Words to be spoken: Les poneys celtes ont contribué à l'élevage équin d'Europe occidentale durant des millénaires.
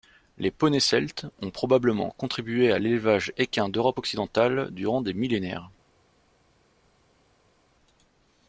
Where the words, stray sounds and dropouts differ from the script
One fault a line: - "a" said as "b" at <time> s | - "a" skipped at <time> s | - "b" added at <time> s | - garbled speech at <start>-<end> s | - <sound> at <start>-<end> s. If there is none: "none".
- "probablement" added at 1.5 s